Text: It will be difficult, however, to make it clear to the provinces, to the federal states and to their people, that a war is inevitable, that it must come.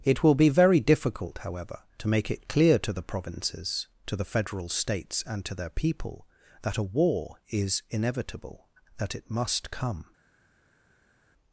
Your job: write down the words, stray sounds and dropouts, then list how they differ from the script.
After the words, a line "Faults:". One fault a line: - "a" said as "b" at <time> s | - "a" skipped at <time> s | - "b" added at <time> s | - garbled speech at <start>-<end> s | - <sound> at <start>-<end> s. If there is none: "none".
It will be very difficult, however, to make it clear to the provinces, to the federal states and to their people, that a war is inevitable, that it must come.
Faults:
- "very" added at 0.5 s